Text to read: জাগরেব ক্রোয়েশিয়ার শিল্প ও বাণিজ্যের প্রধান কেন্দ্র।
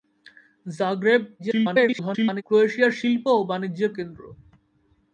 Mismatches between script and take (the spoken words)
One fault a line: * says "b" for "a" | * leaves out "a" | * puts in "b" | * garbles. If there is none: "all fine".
* garbles
* leaves out "প্রধান"